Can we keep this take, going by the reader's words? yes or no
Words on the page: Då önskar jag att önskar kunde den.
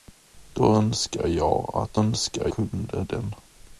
yes